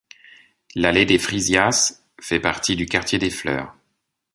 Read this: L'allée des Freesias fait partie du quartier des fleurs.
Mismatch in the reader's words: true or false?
false